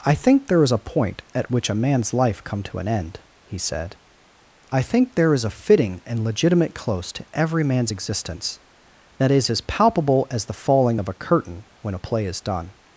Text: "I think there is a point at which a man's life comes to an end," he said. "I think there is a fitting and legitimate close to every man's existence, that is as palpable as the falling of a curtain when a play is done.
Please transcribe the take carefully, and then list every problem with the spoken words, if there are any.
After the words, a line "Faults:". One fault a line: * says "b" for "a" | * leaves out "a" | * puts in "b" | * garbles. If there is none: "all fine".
"I think there is a point at which a man's life come to an end," he said. "I think there is a fitting and legitimate close to every man's existence, that is as palpable as the falling of a curtain when a play is done.
Faults:
* says "come" for "comes"